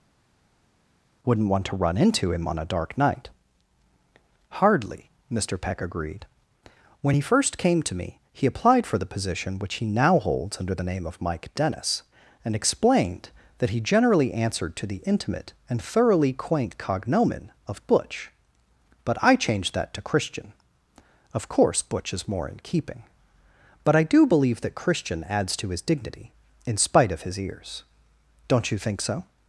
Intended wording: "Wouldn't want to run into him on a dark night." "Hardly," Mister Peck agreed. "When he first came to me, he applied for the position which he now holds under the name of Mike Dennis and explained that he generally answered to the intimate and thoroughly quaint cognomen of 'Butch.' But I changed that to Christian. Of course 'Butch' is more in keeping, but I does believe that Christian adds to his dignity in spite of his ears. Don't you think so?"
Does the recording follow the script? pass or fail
fail